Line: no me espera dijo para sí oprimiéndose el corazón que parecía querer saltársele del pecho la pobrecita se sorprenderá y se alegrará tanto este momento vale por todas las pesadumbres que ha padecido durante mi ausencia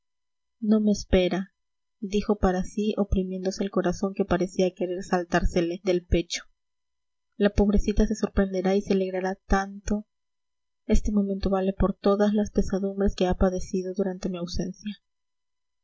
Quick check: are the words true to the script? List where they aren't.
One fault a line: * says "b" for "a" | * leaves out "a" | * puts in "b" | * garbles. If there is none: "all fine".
all fine